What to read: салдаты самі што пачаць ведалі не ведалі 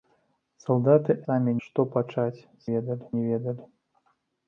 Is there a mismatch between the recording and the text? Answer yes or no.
no